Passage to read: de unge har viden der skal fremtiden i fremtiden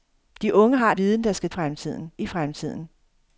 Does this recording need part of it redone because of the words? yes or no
no